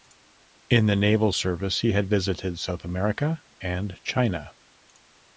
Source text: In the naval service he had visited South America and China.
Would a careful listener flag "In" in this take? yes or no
no